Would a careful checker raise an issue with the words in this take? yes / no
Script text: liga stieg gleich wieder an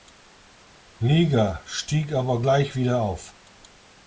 yes